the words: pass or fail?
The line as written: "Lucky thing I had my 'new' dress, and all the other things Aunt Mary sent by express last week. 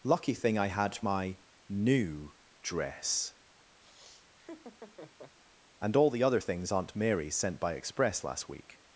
pass